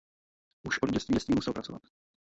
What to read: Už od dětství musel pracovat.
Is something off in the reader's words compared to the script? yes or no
yes